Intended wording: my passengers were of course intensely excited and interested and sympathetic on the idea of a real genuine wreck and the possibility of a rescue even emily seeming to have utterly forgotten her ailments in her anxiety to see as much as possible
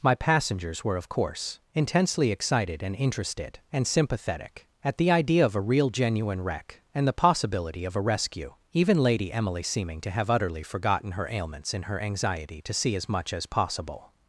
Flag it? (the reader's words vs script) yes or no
yes